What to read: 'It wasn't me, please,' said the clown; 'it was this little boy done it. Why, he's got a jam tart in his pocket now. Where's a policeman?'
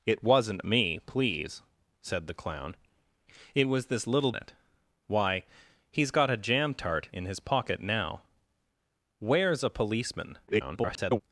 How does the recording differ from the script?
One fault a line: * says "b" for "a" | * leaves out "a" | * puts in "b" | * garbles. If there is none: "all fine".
* leaves out "boy done"
* garbles